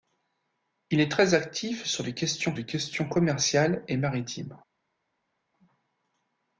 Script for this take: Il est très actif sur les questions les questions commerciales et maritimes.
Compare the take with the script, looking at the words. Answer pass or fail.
pass